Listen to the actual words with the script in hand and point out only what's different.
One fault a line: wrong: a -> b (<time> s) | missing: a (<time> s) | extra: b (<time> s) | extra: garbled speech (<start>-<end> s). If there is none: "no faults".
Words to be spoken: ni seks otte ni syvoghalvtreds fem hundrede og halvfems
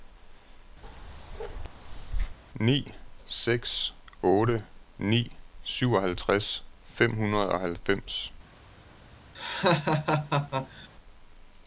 no faults